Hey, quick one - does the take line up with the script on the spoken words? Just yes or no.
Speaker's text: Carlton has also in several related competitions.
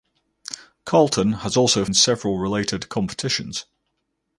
yes